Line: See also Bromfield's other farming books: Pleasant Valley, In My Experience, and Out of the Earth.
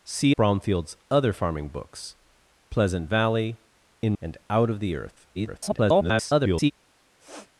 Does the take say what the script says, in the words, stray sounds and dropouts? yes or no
no